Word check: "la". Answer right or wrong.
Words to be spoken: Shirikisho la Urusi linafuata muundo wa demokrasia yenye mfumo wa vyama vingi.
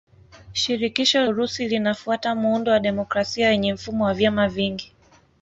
wrong